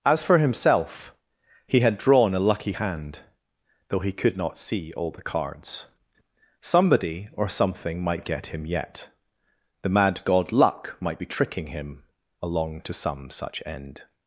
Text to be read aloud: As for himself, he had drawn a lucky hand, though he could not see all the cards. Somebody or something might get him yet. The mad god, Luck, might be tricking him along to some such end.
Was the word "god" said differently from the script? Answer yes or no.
no